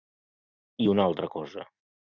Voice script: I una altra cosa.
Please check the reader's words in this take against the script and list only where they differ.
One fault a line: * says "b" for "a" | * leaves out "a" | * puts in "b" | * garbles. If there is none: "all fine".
all fine